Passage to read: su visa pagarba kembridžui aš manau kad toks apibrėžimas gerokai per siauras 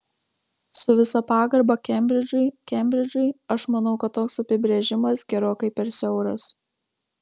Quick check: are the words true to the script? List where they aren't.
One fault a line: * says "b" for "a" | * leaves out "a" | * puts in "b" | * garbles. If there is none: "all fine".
* puts in "kembridžui"